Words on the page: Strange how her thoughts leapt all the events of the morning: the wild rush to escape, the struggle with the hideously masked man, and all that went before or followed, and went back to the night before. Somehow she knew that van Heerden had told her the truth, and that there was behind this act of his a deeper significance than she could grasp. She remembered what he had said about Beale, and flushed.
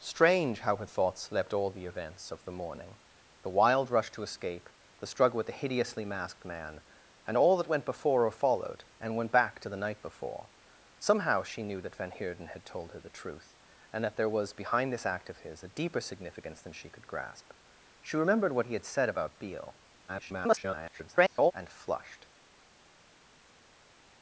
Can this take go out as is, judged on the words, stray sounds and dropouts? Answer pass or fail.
fail